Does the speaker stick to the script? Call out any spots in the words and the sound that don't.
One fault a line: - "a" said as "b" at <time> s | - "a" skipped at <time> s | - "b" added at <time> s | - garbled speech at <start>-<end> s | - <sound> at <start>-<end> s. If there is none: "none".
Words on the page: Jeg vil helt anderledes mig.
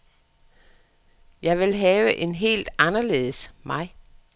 - "have en" added at 1.8 s